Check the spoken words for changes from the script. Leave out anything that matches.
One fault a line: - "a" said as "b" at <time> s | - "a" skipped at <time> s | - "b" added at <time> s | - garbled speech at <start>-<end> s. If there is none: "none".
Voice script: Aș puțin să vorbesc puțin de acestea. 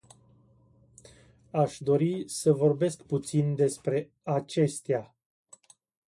- "puțin" said as "dori" at 1.8 s
- "de" said as "despre" at 3.5 s